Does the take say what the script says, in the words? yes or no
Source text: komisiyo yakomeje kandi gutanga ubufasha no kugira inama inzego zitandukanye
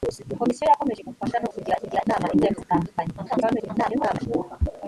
no